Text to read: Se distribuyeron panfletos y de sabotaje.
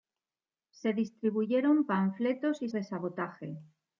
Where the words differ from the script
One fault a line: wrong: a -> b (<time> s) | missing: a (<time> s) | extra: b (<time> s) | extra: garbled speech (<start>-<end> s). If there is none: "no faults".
no faults